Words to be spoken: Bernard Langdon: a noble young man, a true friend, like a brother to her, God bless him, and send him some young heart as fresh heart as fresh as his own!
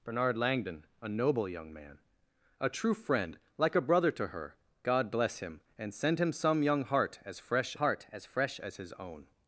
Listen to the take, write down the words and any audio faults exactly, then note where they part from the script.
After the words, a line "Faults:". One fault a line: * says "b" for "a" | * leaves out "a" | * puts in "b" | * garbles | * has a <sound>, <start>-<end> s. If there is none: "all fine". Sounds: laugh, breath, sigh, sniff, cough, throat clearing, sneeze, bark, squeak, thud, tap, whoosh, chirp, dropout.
Bernard Langdon: a noble young man, a true friend, like a brother to her, God bless him, and send him some young heart as fresh heart as fresh as his own!
Faults:
all fine